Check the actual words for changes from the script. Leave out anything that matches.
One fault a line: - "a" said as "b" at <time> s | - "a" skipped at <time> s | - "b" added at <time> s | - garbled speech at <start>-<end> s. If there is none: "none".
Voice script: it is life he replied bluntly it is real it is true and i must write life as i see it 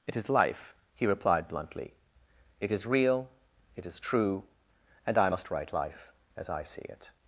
none